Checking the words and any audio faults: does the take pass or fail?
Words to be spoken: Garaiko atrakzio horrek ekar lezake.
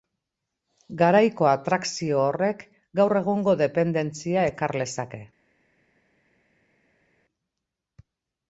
fail